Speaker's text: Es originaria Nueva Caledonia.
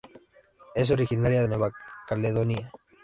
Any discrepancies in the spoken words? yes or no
no